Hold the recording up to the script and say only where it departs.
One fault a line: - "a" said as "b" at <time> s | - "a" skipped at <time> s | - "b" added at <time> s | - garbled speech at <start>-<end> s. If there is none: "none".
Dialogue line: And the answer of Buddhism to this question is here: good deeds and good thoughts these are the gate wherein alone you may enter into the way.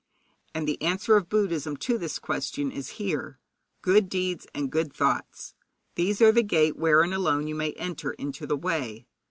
none